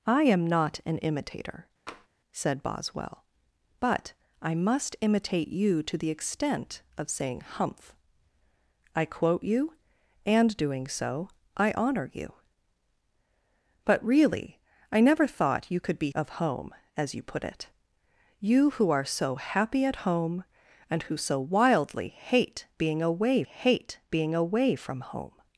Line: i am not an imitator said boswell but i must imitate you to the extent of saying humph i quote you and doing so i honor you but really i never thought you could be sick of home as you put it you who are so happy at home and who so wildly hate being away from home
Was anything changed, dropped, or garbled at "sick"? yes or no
yes